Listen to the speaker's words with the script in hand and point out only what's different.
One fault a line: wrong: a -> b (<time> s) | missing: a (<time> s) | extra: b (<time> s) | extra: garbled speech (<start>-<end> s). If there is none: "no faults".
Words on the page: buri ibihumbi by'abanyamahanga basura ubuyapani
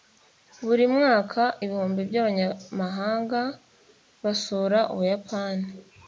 extra: mwaka (0.9 s)